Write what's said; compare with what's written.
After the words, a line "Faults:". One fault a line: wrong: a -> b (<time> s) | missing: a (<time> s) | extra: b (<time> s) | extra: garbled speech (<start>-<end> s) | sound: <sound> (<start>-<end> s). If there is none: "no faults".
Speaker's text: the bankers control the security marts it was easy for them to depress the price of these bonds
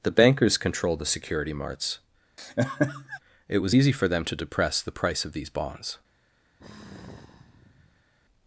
the bankers controlled the security marts it was easy for them to depress the price of these bonds
Faults:
wrong: control -> controlled (0.6 s)
sound: laugh (2.4-3.2 s)
sound: sigh (6.6-8.1 s)